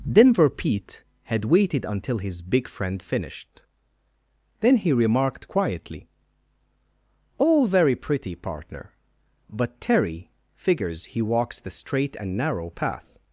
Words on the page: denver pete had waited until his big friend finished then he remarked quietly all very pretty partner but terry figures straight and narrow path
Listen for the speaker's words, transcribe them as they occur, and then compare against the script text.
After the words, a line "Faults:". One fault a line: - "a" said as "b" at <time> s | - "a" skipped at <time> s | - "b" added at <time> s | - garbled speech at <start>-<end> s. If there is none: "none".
denver pete had waited until his big friend finished then he remarked quietly all very pretty partner but terry figures he walks the straight and narrow path
Faults:
- "he walks the" added at 11.1 s